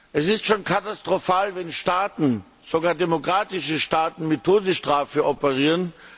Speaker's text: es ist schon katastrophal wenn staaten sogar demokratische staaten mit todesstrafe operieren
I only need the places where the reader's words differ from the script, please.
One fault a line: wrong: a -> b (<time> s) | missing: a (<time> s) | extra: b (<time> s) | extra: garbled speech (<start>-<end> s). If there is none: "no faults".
no faults